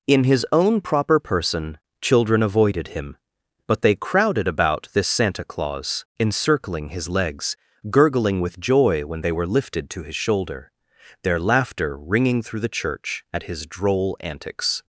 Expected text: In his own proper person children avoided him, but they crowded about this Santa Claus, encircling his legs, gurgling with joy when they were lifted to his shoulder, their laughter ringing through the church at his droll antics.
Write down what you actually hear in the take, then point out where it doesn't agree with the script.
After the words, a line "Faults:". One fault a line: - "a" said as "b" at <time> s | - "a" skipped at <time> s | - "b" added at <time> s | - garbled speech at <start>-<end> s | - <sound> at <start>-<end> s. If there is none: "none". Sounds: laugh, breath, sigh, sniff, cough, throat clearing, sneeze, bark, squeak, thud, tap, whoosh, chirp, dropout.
In his own proper person children avoided him, but they crowded about this Santa Claus, encircling his legs, gurgling with joy when they were lifted to his shoulder, their laughter ringing through the church at his droll antics.
Faults:
none